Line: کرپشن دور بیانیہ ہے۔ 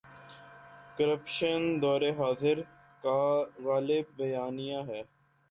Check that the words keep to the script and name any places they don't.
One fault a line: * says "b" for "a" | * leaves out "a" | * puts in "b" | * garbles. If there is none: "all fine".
* puts in "حاضر کا غالب"